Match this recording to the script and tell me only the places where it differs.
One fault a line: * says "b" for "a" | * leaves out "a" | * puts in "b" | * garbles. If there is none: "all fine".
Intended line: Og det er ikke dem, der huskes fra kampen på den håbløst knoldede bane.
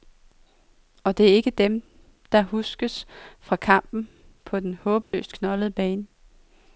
all fine